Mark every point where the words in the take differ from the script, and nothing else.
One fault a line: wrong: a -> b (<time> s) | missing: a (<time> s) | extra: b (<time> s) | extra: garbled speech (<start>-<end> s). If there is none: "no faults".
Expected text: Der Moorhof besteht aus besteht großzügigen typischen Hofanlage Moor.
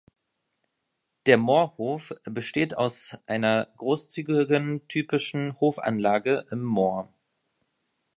wrong: besteht -> einer (3.3 s)
extra: im (6.5 s)